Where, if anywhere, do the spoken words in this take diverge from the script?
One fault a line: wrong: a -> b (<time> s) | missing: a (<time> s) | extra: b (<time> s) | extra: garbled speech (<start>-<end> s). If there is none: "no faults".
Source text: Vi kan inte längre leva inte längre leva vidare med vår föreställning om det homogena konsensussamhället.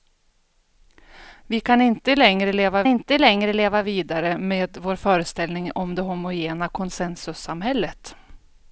no faults